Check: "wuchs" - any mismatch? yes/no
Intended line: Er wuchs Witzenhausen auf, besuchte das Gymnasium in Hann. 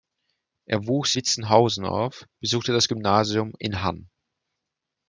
no